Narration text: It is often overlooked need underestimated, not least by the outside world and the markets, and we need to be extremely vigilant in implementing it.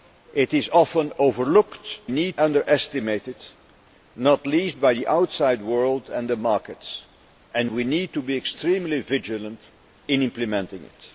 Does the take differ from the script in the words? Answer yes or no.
no